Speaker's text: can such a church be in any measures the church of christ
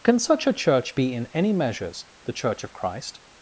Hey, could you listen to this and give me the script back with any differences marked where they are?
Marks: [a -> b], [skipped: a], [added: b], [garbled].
can such a church be in any measures the church of christ